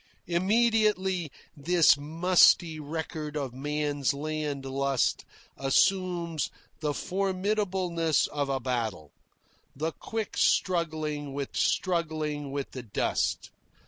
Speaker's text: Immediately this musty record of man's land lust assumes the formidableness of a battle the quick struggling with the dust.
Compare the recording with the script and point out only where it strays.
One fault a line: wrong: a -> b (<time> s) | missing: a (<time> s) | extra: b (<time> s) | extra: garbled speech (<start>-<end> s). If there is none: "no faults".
extra: struggling with (11.6 s)